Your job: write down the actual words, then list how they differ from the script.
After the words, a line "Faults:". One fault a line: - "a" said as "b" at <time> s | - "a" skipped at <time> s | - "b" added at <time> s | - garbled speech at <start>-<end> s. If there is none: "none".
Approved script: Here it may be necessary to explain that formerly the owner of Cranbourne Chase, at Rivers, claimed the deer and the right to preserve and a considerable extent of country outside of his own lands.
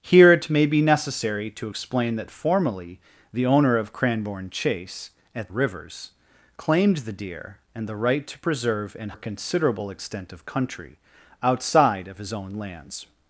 Here it may be necessary to explain that formerly the owner of Cranbourne Chase, at Rivers, claimed the deer and the right to preserve and a considerable extent of country outside of his own lands.
Faults:
none